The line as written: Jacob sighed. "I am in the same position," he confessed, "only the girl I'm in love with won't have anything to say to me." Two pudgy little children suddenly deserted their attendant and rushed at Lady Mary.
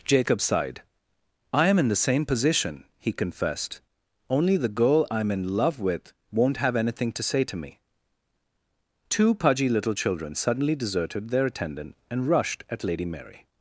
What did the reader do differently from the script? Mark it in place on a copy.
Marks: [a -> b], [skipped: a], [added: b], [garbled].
Jacob sighed. "I am in the same position," he confessed, "only the girl I'm in love with won't have anything to say to me." Two pudgy little children suddenly deserted their attendant and rushed at Lady Mary.